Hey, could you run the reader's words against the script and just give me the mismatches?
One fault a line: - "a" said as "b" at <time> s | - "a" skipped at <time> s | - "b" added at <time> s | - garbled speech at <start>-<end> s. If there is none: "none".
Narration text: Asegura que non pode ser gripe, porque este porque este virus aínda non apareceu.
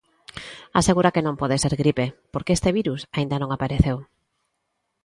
- "porque este" skipped at 2.7 s